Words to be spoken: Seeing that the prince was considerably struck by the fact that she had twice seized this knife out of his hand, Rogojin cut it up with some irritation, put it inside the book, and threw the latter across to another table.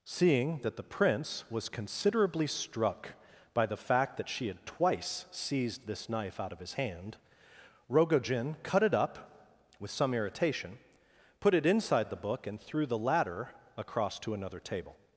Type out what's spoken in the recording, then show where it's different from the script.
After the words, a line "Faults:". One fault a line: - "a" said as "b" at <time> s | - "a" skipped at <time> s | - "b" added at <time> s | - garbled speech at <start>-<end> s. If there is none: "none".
Seeing that the prince was considerably struck by the fact that she had twice seized this knife out of his hand, Rogojin cut it up with some irritation, put it inside the book, and threw the latter across to another table.
Faults:
none